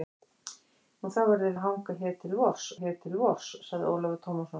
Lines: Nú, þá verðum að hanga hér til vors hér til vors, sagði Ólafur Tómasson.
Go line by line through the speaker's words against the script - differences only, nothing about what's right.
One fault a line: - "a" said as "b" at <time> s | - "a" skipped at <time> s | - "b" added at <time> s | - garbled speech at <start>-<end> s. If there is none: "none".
none